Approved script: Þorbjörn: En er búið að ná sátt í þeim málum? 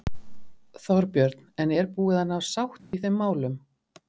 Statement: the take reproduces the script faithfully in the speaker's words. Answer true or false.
true